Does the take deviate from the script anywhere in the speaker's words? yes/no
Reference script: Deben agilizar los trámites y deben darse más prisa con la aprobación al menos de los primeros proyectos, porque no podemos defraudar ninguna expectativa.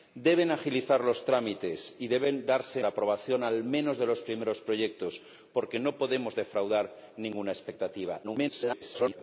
yes